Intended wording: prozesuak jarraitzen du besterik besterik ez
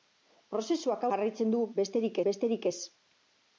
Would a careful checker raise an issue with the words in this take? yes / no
no